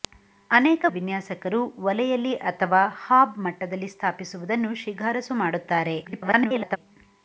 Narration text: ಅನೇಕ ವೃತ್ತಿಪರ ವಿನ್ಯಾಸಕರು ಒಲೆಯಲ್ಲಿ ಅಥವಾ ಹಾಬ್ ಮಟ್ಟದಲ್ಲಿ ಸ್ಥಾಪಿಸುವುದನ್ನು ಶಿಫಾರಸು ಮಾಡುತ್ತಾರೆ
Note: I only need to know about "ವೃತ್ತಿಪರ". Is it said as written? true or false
false